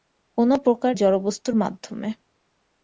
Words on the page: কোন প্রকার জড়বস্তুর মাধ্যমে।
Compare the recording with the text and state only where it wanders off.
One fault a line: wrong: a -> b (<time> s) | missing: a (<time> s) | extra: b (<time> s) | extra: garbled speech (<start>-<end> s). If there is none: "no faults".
no faults